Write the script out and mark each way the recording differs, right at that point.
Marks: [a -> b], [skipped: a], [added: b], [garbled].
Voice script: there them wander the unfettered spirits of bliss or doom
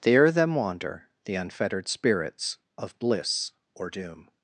there them wander the unfettered spirits of bliss or doom